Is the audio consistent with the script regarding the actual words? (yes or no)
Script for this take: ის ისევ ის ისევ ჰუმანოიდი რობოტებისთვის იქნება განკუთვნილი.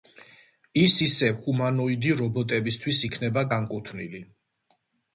no